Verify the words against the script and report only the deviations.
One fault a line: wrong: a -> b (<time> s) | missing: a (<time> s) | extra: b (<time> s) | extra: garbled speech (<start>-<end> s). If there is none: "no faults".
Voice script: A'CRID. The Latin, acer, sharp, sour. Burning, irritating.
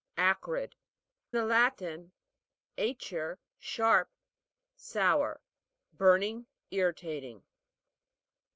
no faults